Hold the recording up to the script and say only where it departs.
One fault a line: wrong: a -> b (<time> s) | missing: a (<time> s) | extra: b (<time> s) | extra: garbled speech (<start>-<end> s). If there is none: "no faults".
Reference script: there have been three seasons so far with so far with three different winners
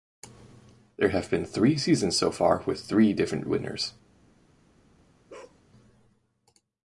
missing: so far with (2.8 s)